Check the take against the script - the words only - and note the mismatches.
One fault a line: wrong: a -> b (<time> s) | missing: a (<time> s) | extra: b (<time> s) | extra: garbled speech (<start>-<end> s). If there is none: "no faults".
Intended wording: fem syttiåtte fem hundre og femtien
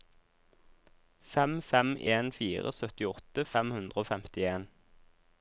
extra: fem en fire (1.7 s)